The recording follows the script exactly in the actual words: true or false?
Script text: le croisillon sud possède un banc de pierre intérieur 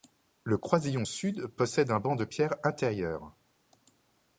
true